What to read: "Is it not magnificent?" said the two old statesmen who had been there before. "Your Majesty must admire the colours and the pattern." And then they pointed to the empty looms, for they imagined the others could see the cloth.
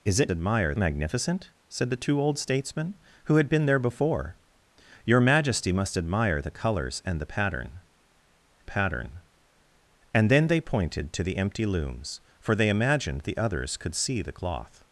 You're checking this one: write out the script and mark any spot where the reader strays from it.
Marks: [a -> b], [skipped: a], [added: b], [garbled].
"Is it [not -> admire] magnificent?" said the two old statesmen who had been there before. "Your Majesty must admire the colours and the pattern." [added: pattern] And then they pointed to the empty looms, for they imagined the others could see the cloth.